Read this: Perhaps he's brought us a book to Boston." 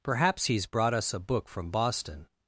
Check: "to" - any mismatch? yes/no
yes